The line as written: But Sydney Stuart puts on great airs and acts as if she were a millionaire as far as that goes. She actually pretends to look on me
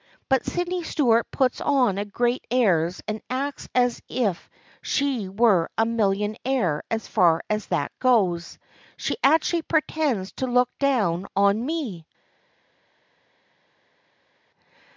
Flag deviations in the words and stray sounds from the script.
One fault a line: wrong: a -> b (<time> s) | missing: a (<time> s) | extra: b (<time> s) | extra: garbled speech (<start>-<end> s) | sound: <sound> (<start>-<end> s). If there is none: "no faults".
extra: down (10.8 s)